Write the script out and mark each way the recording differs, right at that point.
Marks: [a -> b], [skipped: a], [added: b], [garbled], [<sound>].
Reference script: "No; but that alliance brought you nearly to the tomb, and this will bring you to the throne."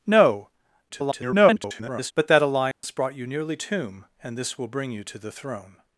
"No; [garbled] but that alliance [dropout] brought you nearly [skipped: to the] tomb, and this will bring you to the throne."